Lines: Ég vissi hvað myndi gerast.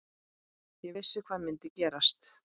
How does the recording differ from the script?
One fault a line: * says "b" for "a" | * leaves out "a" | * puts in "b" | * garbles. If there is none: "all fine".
all fine